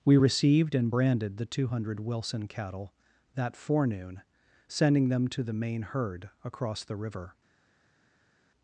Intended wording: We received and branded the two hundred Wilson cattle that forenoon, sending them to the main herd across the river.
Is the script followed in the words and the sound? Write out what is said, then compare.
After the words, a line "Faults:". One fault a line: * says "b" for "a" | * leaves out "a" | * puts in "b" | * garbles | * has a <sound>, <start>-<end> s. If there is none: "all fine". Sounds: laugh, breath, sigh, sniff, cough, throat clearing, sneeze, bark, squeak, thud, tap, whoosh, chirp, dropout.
We received and branded the two hundred Wilson cattle that forenoon, sending them to the main herd across the river.
Faults:
all fine